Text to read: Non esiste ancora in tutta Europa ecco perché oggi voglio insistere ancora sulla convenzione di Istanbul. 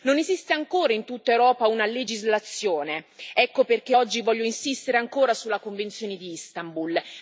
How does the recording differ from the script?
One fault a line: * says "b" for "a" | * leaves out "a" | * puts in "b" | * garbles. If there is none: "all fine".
* puts in "una legislazione"